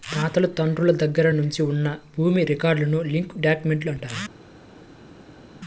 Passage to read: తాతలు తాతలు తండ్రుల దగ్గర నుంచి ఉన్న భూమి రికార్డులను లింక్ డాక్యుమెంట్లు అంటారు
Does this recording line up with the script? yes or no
no